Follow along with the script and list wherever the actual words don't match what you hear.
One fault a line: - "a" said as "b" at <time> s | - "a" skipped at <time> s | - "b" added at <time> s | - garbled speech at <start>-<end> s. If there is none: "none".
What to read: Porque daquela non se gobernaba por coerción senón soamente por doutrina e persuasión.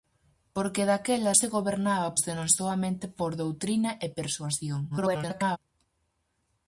- "non" skipped at 1.3 s
- "por coerción" skipped at 2.1 s
- garbled speech at 4.9-5.6 s